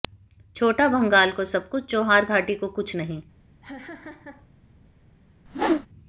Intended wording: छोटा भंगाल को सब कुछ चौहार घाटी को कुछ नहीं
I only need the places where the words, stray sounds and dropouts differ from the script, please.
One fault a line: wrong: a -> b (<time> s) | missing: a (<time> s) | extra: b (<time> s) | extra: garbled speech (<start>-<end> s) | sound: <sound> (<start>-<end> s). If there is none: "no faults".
sound: laugh (3.6-4.5 s)
sound: whoosh (5.5-5.9 s)